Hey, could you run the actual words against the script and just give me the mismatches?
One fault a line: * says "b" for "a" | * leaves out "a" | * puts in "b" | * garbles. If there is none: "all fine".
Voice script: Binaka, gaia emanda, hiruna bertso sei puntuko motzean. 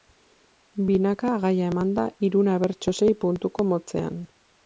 all fine